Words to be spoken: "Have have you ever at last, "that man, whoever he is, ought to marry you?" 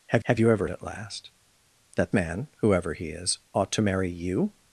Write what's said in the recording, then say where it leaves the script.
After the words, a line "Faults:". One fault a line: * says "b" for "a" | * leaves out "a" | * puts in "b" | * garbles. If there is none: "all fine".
"Have have you ever at last, "that man, whoever he is, ought to marry you?"
Faults:
all fine